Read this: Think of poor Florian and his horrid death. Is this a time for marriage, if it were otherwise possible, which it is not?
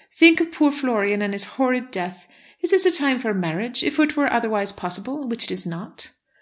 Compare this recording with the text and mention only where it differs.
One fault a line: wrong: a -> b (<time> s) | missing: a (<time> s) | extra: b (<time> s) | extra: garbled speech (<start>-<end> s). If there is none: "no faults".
no faults